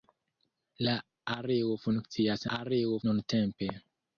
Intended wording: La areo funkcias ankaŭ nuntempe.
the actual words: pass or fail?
fail